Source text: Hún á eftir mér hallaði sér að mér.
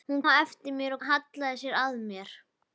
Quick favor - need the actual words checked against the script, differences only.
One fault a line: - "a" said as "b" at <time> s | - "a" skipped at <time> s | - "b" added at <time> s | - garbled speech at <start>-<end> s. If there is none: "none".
none